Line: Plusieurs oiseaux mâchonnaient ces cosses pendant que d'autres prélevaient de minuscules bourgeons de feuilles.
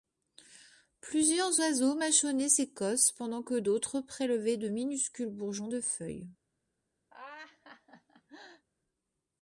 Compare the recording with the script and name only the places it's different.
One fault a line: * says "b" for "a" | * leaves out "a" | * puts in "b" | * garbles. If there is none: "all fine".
all fine